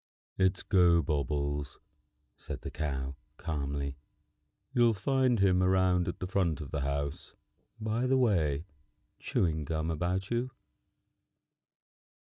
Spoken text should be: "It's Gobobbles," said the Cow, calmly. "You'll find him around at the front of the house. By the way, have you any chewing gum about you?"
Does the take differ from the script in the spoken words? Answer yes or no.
yes